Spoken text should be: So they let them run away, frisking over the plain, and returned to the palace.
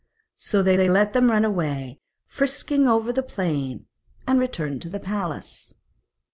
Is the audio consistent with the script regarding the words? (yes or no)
no